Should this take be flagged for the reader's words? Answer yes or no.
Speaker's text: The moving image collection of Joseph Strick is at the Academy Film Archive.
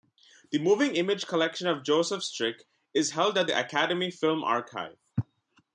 yes